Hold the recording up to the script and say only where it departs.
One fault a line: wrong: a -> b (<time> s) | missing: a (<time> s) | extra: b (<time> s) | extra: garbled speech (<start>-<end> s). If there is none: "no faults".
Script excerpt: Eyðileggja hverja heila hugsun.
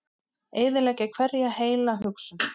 no faults